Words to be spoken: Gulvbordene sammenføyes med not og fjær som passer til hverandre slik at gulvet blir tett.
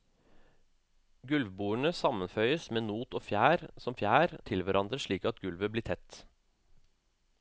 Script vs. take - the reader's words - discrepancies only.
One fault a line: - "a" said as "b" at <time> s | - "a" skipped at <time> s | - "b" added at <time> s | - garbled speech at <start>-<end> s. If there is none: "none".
- "passer" said as "fjær" at 4.0 s